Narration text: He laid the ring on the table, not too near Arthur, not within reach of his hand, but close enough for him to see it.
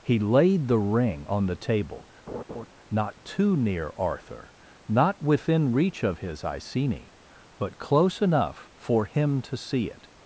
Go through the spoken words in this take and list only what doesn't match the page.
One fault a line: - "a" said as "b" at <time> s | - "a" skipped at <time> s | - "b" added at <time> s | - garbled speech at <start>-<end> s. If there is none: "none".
- "hand" said as "iceni" at 6.4 s